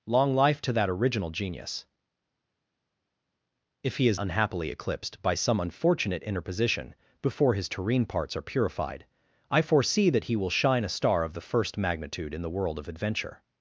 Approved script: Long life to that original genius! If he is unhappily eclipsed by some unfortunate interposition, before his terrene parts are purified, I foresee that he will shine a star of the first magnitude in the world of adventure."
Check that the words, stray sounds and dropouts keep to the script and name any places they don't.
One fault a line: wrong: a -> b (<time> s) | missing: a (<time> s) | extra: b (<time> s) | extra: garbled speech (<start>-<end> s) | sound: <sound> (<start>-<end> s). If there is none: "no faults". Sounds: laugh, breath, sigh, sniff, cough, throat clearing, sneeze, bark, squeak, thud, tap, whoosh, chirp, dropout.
no faults